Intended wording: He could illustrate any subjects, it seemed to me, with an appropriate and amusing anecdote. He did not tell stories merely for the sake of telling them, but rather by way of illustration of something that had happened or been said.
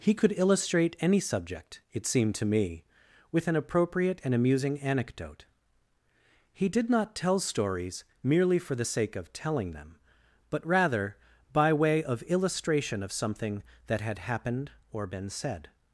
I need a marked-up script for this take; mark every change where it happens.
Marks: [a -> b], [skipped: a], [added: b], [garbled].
He could illustrate any [subjects, -> subject] it seemed to me, with an appropriate and amusing anecdote. He did not tell stories merely for the sake of telling them, but rather by way of illustration of something that had happened or been said.